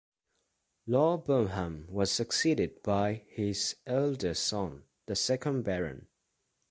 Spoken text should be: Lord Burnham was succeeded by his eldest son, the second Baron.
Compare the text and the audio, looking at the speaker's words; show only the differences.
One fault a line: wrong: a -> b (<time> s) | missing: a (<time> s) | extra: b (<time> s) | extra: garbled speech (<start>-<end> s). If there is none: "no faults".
no faults